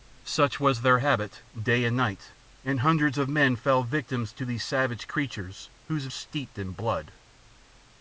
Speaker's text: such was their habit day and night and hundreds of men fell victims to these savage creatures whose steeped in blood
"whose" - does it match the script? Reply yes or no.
yes